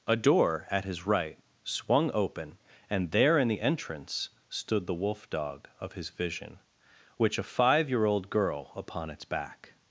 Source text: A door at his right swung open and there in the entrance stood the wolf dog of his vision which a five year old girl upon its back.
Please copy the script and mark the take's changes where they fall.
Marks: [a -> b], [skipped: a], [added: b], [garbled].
A door at his right swung open and there in the entrance stood the wolf dog of his vision which a five year old girl upon its back.